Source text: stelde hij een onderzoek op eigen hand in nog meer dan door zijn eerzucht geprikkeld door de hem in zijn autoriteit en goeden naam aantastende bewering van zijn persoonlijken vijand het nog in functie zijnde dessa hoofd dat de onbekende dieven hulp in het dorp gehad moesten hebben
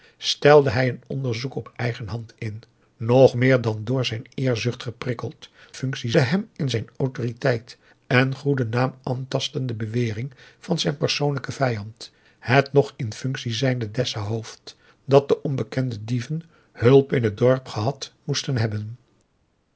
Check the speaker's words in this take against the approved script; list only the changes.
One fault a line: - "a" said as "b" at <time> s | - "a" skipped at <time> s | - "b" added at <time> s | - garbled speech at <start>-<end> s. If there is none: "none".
- "door" said as "functie" at 5.7 s